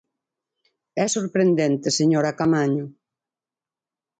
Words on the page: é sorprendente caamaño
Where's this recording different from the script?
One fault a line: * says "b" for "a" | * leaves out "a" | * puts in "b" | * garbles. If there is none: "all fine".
* puts in "señora"